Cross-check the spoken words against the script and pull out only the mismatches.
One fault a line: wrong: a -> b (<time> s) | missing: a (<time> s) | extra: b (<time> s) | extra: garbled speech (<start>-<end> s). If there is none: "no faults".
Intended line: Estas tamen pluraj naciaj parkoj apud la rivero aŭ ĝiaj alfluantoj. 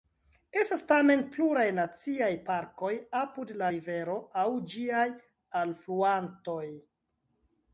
no faults